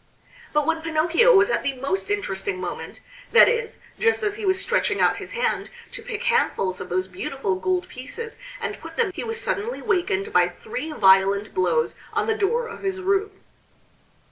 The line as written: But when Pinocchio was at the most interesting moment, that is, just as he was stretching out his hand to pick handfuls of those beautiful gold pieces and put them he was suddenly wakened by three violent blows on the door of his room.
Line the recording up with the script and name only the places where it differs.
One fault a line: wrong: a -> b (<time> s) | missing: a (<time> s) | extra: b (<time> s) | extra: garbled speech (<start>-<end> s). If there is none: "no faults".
no faults